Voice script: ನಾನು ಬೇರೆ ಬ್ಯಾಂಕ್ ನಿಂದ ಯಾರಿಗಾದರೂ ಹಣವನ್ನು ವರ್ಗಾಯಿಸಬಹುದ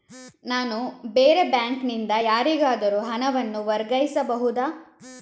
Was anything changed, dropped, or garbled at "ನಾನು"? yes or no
no